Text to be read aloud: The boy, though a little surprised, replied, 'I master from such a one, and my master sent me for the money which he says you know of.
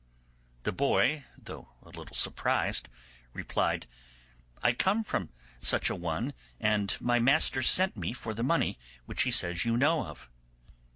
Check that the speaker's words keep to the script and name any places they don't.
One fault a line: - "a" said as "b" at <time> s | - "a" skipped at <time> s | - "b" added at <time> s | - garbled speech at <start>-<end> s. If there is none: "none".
- "master" said as "come" at 4.7 s